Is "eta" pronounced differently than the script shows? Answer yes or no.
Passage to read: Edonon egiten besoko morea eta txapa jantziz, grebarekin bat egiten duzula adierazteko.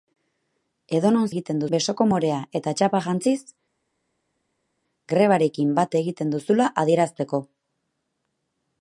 no